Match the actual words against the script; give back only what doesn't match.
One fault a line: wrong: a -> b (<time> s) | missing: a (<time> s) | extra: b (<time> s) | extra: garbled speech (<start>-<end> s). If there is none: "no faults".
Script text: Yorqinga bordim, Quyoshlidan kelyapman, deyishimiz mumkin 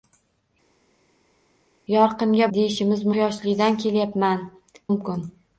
wrong: bordim -> deyishimiz (2.6 s)
missing: deyishimiz (4.4 s)